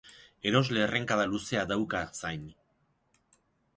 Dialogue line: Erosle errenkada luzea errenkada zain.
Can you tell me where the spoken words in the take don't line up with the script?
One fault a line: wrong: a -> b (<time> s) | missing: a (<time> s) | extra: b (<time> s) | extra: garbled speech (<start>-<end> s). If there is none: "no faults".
wrong: errenkada -> dauka (1.7 s)